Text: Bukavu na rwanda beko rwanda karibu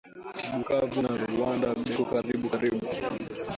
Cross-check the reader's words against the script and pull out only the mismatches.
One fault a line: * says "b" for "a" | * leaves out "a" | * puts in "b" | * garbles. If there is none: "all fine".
* says "karibu" for "rwanda"